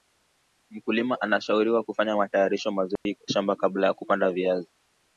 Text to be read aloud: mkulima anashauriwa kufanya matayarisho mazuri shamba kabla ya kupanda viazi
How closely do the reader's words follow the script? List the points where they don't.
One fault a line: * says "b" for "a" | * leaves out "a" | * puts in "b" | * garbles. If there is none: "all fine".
all fine